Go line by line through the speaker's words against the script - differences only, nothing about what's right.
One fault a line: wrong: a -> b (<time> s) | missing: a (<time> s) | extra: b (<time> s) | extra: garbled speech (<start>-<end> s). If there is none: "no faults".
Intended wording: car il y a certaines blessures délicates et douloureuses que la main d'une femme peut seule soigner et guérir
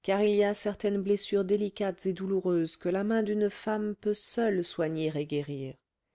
no faults